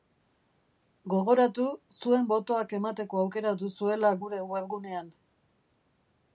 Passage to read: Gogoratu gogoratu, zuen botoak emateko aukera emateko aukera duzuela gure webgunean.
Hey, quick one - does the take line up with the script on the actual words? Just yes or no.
no